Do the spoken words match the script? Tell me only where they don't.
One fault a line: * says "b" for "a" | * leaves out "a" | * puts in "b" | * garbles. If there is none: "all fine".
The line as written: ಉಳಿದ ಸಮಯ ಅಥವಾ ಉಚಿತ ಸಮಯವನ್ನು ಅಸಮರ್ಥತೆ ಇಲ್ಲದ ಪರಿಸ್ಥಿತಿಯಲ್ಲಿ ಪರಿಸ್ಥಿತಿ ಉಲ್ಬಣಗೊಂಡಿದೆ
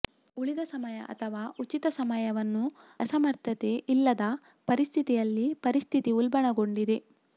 all fine